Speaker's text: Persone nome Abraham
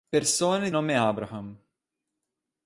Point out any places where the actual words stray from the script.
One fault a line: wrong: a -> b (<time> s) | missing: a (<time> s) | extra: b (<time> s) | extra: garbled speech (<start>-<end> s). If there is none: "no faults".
no faults